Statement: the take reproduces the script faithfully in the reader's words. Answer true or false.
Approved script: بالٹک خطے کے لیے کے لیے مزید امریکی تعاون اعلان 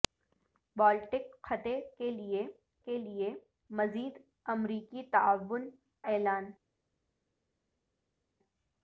true